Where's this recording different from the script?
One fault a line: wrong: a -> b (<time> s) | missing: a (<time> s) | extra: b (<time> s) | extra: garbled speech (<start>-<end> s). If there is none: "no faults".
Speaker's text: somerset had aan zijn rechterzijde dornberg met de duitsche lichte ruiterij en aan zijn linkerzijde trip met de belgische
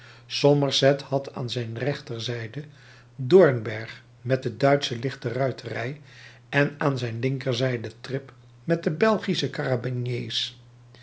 no faults